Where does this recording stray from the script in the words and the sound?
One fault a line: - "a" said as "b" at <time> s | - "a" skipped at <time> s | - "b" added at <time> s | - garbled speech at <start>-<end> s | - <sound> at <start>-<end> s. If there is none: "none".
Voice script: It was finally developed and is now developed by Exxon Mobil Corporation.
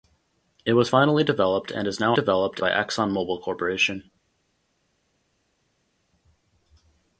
none